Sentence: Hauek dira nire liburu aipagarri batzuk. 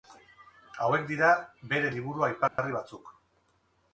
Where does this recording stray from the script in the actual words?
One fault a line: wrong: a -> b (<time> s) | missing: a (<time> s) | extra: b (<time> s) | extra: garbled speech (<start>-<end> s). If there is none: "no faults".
wrong: nire -> bere (1.7 s)